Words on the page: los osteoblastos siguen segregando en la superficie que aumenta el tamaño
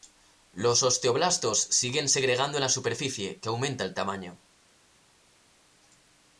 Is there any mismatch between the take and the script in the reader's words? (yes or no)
no